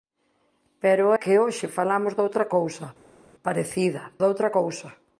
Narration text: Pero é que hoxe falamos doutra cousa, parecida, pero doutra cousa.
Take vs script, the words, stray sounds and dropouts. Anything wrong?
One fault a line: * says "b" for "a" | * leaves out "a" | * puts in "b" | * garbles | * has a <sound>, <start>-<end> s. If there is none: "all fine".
* leaves out "é"
* leaves out "pero"